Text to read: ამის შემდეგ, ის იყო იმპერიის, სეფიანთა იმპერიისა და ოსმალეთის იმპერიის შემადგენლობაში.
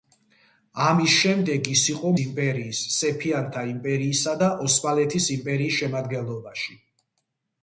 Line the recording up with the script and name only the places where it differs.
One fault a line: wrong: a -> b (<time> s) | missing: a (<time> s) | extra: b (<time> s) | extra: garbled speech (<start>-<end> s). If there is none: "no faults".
no faults